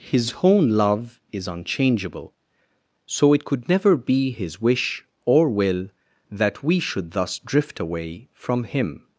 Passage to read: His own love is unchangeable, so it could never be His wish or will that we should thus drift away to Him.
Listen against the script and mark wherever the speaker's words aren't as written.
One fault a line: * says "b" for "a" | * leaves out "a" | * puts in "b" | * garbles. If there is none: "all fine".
* says "from" for "to"